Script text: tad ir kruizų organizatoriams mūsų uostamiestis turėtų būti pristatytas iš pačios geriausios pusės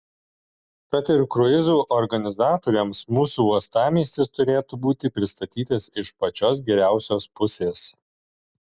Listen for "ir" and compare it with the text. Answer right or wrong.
right